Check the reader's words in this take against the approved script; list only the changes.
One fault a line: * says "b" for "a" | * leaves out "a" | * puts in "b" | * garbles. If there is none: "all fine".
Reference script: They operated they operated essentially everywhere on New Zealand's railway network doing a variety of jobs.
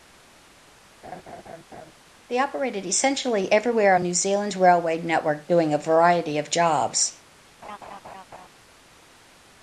* leaves out "they operated"